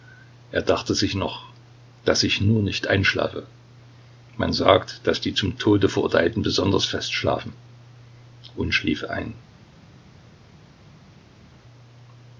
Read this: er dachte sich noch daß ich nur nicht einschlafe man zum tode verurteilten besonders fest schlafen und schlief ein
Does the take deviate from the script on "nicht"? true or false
false